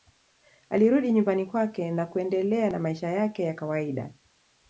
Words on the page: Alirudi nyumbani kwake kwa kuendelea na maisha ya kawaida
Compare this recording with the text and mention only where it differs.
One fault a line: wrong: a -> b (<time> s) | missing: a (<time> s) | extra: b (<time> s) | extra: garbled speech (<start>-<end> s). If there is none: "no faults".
wrong: kwa -> na (1.9 s)
extra: yake (3.1 s)